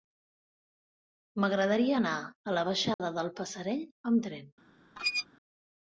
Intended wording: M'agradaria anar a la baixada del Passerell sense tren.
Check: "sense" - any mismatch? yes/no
yes